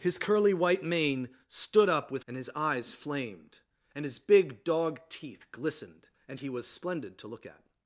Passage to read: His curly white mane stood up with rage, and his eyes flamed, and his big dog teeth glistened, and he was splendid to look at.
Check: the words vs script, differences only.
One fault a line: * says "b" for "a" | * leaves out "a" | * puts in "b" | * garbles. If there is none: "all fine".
* leaves out "rage"